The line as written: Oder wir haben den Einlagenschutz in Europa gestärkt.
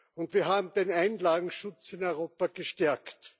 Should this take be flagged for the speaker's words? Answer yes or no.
yes